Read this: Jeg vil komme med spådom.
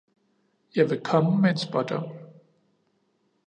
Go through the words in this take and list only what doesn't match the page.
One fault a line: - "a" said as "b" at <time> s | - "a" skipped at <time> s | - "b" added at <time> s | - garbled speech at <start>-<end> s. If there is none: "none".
- "en" added at 1.5 s